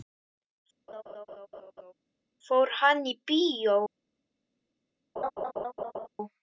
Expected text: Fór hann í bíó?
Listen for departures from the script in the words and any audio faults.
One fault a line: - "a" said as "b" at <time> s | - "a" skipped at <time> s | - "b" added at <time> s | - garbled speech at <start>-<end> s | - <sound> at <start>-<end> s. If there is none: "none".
- laugh at 0.9-1.9 s
- laugh at 5.2-6.1 s